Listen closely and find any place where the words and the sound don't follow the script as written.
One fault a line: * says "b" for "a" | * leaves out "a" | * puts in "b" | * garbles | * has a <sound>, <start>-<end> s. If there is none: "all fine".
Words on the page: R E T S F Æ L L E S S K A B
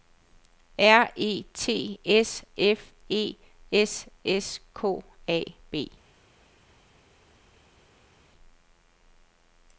* leaves out "Æ L L"